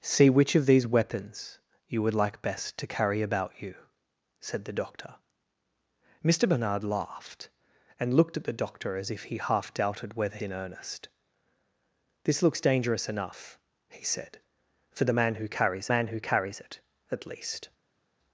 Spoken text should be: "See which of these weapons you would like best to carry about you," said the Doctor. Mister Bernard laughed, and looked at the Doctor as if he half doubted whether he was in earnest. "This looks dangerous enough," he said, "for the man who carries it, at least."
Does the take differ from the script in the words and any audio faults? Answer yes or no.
yes